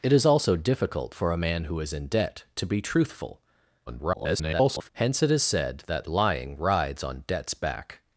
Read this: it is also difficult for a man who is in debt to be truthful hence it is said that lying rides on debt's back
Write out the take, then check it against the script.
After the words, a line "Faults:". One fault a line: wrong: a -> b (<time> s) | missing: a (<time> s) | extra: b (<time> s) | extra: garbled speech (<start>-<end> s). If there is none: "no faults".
it is also difficult for a man who is in debt to be truthful [garbled] hence it is said that lying rides on debt's back
Faults:
extra: garbled speech (3.9-4.9 s)